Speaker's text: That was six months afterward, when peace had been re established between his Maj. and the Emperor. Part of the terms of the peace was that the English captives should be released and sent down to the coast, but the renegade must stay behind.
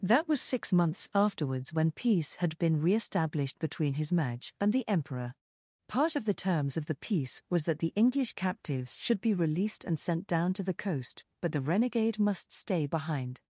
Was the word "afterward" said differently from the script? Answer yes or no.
yes